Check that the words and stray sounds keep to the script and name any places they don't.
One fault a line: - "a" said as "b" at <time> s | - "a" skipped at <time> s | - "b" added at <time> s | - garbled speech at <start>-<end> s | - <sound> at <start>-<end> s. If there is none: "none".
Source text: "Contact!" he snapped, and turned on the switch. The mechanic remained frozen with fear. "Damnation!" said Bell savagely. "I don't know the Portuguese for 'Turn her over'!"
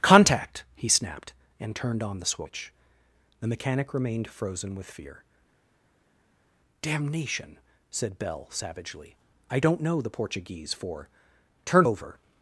- "her" skipped at 11.9 s